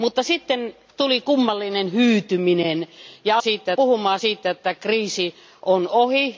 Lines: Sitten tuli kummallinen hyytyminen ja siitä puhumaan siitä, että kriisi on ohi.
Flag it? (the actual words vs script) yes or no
no